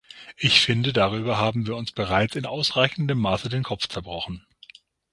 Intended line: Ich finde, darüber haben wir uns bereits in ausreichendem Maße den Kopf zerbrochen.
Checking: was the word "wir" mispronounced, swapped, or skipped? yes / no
no